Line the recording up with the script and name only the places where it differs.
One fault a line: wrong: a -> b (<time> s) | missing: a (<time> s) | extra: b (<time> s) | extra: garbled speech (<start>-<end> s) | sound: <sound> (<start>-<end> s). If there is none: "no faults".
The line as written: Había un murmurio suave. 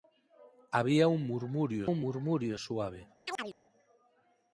extra: un murmurio (1.8 s)
sound: chirp (3.3-3.6 s)